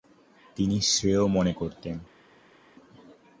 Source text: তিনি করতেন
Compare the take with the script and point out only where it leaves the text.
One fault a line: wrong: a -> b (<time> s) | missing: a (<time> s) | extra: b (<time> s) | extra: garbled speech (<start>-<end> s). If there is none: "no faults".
extra: শ্রেয় মনে (0.8 s)